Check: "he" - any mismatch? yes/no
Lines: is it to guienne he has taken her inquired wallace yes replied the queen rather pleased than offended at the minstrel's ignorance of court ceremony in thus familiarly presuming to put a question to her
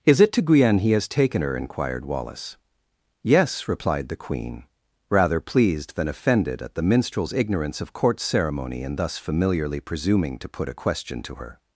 no